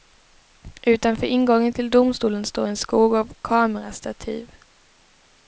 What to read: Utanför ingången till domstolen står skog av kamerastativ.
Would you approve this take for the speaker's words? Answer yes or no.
no